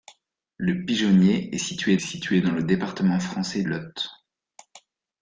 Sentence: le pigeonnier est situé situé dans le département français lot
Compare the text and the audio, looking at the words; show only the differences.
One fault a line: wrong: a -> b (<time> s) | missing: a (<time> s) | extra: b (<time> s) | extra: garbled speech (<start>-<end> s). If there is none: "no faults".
no faults